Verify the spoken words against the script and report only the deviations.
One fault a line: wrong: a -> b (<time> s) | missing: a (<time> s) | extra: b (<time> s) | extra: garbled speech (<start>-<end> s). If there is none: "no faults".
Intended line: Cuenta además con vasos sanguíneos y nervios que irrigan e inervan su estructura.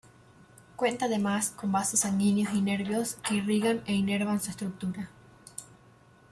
no faults